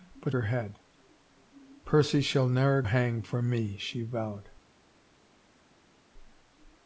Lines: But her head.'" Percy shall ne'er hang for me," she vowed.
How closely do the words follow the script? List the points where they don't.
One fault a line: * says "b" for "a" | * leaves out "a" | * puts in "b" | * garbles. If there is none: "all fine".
all fine